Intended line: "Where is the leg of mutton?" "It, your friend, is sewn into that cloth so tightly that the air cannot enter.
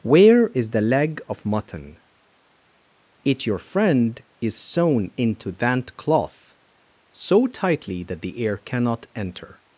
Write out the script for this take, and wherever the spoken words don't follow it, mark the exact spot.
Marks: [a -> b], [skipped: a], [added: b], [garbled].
"Where is the leg of mutton?" "It, your friend, is sewn into that cloth so tightly that the air cannot enter.